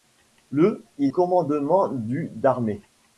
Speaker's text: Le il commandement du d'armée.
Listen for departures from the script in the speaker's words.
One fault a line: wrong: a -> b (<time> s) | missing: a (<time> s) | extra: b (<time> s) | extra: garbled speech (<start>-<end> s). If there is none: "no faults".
no faults